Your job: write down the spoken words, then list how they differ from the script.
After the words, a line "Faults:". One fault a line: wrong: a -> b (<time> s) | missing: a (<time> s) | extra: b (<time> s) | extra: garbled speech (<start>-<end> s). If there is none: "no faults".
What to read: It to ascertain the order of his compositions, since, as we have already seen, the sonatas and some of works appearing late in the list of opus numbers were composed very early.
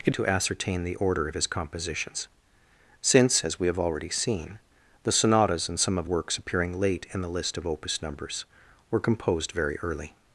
It to ascertain the order of his compositions, since, as we have already seen, the sonatas and some of works appearing late in the list of opus numbers were composed very early.
Faults:
no faults